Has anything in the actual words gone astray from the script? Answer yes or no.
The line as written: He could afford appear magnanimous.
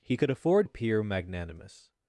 no